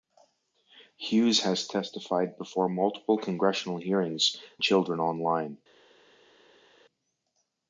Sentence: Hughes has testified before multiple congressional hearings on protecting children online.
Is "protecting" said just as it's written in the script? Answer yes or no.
no